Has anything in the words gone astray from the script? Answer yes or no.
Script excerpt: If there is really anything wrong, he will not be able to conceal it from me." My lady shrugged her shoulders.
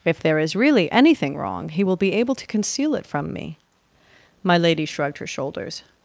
yes